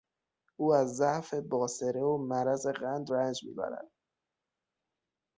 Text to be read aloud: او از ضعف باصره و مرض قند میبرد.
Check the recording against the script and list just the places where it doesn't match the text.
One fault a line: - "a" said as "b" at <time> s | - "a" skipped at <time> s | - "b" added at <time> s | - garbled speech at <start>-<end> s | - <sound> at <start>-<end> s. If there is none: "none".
- "رنج" added at 3.1 s